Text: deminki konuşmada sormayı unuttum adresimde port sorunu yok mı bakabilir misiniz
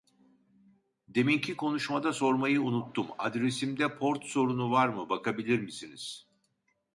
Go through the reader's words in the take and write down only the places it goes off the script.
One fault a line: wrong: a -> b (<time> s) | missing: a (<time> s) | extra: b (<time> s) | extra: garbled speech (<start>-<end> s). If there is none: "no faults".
wrong: yok -> var (4.7 s)